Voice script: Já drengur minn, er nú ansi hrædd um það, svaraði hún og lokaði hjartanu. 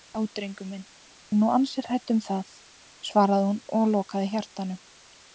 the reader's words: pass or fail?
pass